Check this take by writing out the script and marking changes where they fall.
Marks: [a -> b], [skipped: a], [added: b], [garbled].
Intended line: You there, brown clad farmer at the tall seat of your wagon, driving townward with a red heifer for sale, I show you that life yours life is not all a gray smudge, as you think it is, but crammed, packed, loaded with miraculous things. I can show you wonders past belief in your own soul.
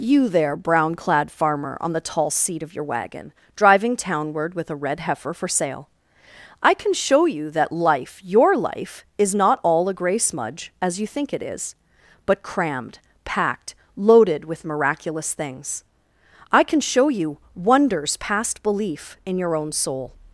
You there, brown clad farmer [at -> on] the tall seat of your wagon, driving townward with a red heifer for sale, I [added: can] show you that life [yours -> your] life is not all a gray smudge, as you think it is, but crammed, packed, loaded with miraculous things. I can show you wonders past belief in your own soul.